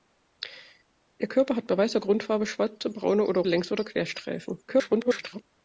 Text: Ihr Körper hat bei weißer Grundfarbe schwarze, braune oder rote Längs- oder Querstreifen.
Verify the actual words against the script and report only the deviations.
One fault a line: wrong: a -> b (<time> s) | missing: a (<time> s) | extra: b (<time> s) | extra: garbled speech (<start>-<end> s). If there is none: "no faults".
missing: rote (3.4 s)
extra: garbled speech (4.7-5.4 s)